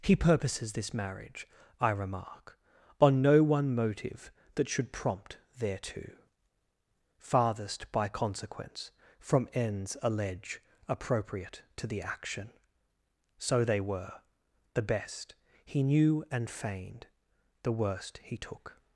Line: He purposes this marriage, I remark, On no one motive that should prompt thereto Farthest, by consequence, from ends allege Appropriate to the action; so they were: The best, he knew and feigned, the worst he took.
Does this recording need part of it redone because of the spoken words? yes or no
no